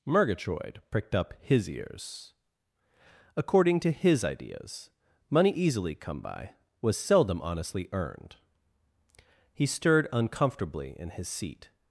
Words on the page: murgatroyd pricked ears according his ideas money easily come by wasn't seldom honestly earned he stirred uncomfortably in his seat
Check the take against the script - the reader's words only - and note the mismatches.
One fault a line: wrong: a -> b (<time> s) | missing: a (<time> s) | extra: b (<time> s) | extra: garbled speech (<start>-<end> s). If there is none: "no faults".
extra: up his (1.1 s)
extra: to (3.8 s)
wrong: wasn't -> was (6.8 s)